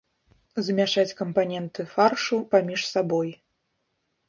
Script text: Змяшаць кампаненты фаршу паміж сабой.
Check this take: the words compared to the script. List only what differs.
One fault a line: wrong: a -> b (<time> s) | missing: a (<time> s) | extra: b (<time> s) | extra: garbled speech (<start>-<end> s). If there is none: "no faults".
no faults